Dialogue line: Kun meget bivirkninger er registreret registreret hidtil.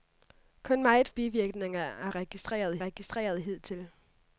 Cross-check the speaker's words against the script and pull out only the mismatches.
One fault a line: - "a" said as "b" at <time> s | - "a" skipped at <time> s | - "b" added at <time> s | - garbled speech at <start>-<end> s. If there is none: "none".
none